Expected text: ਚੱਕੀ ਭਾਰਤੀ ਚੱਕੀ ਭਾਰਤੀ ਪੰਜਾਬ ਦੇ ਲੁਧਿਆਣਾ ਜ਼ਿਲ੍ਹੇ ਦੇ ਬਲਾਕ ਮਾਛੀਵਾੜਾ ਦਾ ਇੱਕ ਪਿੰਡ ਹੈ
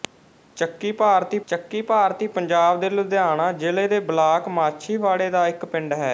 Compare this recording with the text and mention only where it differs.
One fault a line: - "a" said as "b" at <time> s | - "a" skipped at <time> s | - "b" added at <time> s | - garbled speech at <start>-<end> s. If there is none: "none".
none